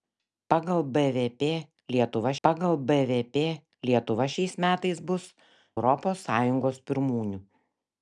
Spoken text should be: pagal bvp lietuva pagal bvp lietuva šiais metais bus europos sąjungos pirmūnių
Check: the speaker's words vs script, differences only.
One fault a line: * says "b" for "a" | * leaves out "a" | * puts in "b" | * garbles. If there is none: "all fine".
all fine